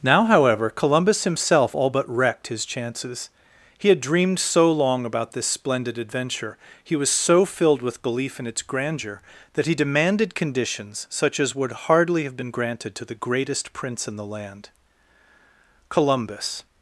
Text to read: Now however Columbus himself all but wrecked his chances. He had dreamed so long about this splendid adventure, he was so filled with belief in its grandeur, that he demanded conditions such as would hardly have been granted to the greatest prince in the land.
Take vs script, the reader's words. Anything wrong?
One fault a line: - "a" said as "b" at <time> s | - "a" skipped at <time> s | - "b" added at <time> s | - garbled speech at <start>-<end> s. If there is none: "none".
- "Columbus" added at 15.9 s